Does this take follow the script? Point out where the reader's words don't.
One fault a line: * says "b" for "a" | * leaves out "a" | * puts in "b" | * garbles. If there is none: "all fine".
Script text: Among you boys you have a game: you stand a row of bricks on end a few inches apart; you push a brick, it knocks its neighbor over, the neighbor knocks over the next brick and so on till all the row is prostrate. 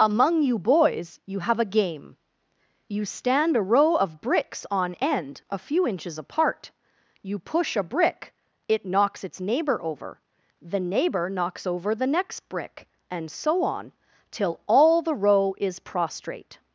all fine